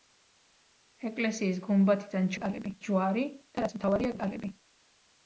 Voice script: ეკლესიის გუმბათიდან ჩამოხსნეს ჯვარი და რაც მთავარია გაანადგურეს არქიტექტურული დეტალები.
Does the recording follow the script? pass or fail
fail